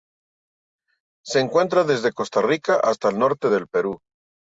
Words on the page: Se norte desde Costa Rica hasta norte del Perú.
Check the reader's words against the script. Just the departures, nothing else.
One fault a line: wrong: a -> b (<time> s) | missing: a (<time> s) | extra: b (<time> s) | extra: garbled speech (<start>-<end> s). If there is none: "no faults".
wrong: norte -> encuentra (1.4 s)
extra: el (3.1 s)